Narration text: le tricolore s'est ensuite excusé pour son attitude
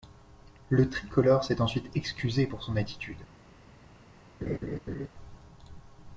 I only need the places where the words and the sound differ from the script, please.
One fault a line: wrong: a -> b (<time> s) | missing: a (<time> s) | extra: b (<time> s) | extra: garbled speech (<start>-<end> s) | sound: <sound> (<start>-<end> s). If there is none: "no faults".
sound: laugh (4.4-5.1 s)